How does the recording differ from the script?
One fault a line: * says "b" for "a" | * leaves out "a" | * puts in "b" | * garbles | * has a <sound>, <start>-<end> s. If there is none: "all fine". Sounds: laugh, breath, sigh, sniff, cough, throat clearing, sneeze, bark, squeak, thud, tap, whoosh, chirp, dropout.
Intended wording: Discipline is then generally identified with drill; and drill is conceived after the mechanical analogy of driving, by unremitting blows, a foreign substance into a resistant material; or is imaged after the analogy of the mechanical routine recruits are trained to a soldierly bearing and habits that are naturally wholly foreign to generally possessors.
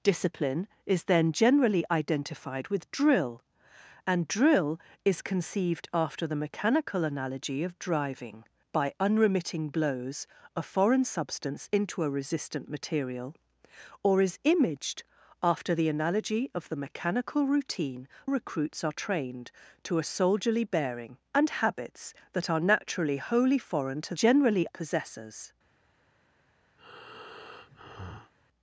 * has a breath, 26.8-28.3 s